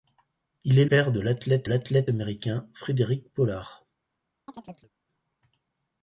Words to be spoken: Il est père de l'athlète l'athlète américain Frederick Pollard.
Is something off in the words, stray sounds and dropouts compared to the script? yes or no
yes